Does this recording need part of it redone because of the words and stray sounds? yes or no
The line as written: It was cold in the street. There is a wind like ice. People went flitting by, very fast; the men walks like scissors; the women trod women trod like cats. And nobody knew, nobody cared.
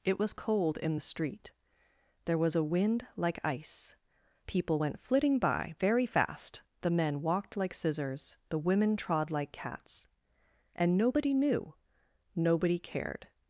yes